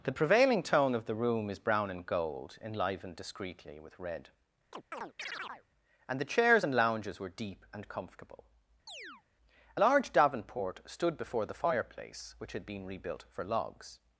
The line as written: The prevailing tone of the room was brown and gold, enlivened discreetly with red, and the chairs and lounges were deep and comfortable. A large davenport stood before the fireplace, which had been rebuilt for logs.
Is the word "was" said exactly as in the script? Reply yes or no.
no